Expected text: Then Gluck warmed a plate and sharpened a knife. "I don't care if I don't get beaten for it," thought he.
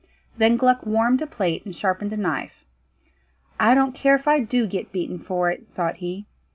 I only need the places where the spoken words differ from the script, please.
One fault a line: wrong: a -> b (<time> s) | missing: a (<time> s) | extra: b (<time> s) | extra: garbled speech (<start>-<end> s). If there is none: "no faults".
wrong: don't -> do (4.4 s)